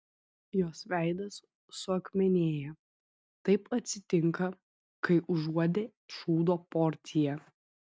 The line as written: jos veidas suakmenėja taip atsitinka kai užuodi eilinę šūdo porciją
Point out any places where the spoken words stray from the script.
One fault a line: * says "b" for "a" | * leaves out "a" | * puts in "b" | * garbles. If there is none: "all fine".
* leaves out "eilinę"